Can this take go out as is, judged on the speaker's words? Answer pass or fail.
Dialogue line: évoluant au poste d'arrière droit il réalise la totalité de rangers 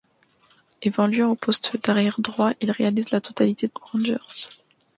pass